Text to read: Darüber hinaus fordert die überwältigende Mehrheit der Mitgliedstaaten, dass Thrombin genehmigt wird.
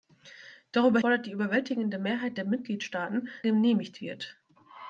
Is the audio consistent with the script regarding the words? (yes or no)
no